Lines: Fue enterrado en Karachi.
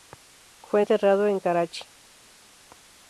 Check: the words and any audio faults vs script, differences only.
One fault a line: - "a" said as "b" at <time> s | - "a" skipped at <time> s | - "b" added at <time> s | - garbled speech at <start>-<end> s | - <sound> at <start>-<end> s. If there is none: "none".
none